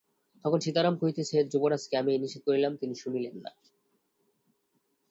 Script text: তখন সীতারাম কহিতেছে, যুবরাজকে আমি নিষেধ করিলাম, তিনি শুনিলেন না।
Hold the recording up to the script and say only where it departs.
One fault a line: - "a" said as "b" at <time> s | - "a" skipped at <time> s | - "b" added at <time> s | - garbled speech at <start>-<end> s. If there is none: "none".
none